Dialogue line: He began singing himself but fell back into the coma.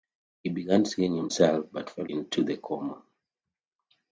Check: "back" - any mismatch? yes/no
yes